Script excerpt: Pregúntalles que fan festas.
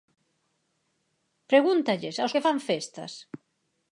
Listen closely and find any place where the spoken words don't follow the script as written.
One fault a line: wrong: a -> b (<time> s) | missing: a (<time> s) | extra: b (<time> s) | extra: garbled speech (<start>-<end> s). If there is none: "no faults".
extra: aos (2.2 s)